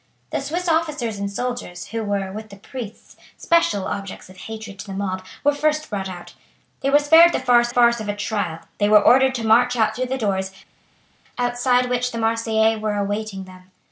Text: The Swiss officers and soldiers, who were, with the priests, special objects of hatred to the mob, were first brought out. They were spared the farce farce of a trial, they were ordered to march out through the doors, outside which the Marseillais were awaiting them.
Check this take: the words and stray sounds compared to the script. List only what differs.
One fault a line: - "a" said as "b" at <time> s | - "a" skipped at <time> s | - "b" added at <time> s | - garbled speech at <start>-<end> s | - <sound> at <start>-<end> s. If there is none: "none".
none